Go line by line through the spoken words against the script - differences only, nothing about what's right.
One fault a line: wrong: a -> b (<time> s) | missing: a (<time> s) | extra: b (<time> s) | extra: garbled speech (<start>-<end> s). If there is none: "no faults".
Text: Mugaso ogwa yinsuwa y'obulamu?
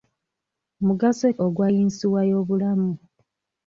no faults